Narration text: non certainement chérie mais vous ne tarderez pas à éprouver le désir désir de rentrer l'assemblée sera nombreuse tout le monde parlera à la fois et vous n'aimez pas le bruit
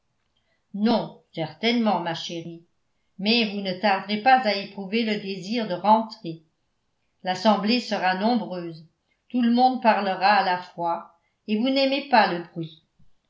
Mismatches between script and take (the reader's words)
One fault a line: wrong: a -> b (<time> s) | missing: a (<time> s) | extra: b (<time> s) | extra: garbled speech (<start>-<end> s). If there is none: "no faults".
extra: ma (2.0 s)
missing: désir (5.7 s)